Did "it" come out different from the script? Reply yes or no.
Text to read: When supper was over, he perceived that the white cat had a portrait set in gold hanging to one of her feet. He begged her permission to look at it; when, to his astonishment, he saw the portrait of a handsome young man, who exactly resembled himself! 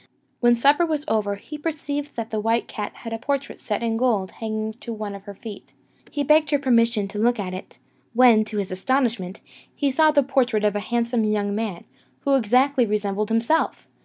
no